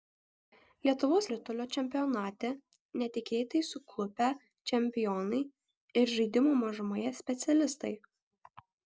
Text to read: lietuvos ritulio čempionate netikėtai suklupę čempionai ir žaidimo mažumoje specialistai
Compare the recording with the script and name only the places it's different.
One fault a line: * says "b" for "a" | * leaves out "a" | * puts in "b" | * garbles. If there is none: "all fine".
all fine